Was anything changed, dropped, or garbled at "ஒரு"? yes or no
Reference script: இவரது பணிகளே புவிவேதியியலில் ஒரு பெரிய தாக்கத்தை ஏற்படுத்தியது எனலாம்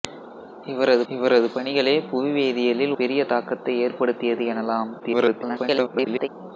yes